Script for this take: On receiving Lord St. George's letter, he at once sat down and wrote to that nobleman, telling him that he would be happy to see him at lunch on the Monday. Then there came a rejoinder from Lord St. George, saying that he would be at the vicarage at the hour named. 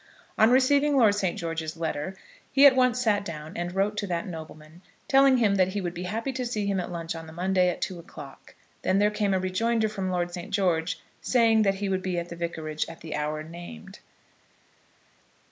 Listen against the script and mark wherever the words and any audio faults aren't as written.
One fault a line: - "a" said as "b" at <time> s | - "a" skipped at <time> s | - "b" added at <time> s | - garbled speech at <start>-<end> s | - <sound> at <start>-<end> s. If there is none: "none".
- "at two o'clock" added at 7.7 s